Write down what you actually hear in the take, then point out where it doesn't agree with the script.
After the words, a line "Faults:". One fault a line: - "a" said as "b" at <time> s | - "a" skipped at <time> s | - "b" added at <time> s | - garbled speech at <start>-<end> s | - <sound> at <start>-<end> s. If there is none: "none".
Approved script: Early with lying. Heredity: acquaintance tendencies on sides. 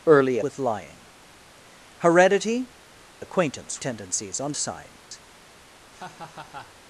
Early with lying. Heredity: acquaintance tendencies on sides.
Faults:
- dropout at 5.0-5.1 s
- laugh at 5.9-6.8 s